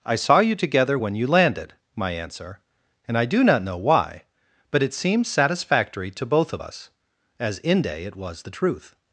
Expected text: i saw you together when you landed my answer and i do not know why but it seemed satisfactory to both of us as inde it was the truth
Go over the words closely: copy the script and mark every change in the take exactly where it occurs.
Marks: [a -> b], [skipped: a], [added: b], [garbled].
i saw you together when you landed my answer and i do not know why but it seemed satisfactory to both of us as inde it was the truth